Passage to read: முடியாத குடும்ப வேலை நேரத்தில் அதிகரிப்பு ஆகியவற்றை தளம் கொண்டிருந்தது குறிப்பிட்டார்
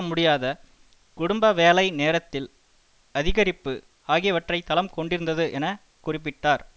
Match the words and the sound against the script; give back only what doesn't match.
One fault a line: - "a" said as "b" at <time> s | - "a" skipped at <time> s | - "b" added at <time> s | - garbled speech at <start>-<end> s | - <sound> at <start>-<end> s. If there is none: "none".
- "என" added at 5.5 s